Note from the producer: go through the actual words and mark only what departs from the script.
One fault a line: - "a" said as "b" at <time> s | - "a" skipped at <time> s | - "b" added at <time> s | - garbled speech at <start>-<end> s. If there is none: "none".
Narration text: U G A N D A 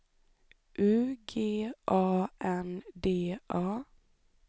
none